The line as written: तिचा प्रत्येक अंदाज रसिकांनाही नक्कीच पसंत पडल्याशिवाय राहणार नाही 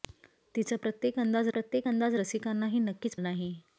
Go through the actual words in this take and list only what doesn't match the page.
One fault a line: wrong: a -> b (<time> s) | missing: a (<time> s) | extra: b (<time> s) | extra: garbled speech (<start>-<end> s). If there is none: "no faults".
extra: प्रत्येक अंदाज (1.5 s)
missing: पसंत पडल्याशिवाय राहणार (3.1 s)